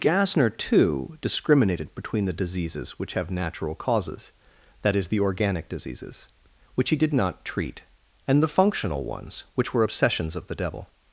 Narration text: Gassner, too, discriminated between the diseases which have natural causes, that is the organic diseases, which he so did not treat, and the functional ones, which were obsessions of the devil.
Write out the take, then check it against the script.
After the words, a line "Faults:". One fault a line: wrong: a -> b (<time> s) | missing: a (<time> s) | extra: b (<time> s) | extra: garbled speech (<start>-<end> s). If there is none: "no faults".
Gassner, too, discriminated between the diseases which have natural causes, that is the organic diseases, which he did not treat, and the functional ones, which were obsessions of the devil.
Faults:
missing: so (7.0 s)